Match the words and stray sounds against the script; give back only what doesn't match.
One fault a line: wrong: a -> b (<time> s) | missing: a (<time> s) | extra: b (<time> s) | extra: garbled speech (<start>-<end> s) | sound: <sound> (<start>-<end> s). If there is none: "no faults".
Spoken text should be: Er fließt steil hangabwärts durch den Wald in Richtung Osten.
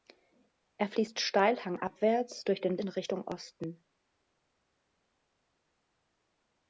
missing: Wald (2.8 s)